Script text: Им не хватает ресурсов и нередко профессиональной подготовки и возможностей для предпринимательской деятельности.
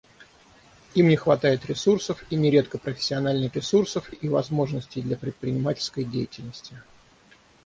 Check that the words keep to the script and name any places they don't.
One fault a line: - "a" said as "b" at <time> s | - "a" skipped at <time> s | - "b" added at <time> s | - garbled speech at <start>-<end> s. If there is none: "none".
- "подготовки" said as "ресурсов" at 3.5 s